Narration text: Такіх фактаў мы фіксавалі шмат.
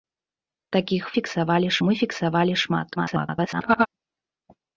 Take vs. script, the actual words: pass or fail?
fail